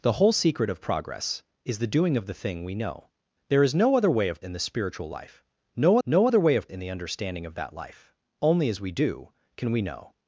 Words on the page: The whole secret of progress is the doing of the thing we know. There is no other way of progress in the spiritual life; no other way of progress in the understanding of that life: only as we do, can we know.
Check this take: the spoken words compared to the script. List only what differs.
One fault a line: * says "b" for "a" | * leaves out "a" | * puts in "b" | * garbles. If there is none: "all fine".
* leaves out "progress"
* puts in "no"
* leaves out "progress"